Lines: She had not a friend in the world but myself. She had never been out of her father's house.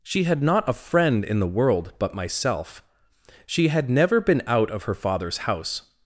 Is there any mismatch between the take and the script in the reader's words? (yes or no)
no